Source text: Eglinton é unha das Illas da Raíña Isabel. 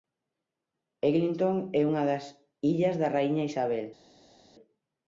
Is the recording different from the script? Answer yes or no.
no